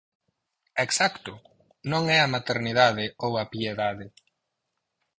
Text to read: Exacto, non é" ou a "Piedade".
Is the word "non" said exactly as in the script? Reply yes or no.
yes